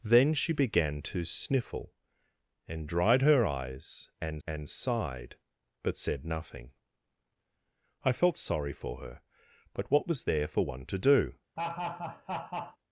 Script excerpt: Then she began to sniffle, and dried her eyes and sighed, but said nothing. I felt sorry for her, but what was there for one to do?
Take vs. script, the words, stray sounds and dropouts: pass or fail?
fail